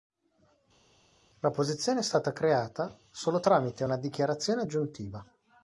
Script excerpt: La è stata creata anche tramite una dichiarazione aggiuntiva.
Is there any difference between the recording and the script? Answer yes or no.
yes